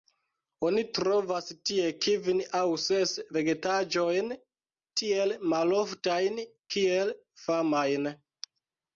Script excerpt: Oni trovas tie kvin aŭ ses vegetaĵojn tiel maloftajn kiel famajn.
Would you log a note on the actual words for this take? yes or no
no